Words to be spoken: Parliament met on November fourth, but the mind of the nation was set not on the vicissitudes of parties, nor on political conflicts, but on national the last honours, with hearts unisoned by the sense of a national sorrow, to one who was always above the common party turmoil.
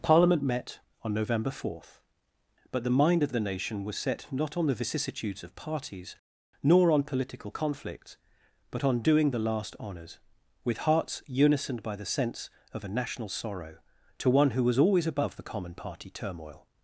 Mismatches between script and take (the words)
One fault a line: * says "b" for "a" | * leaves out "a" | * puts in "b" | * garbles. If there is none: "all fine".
* says "doing" for "national"